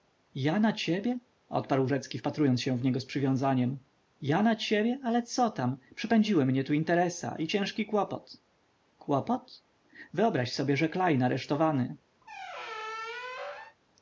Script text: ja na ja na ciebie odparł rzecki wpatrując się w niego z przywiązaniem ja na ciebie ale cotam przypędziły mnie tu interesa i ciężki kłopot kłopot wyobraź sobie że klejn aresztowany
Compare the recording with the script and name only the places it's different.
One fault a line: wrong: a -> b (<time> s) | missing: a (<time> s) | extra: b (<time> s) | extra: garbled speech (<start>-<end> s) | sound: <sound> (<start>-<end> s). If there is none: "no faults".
missing: ja na (0.7 s)
sound: squeak (12.2-13.8 s)